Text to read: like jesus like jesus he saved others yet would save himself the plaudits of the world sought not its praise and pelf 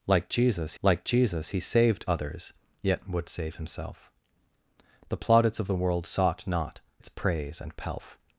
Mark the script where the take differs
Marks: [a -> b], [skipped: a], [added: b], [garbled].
like jesus like jesus he saved others yet would save himself the plaudits of the world sought not its praise and pelf